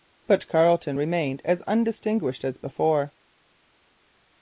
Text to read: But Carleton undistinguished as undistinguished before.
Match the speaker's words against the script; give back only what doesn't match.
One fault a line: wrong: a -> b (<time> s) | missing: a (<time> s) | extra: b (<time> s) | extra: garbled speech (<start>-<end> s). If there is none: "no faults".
wrong: undistinguished -> remained (0.9 s)
extra: as (2.4 s)